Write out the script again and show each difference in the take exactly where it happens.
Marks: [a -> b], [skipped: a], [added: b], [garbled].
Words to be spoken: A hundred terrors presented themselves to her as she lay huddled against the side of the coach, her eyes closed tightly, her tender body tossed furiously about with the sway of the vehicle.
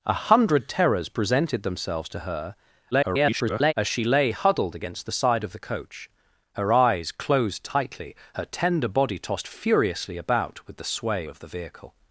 A hundred terrors presented themselves to her [garbled] as she lay huddled against the side of the coach, her eyes closed tightly, her tender body tossed furiously about with the sway of the vehicle.